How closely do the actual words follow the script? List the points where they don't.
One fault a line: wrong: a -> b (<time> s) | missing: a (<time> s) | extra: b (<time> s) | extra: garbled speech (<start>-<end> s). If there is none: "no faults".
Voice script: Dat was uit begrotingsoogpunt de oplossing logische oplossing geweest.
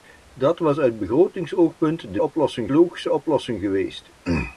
no faults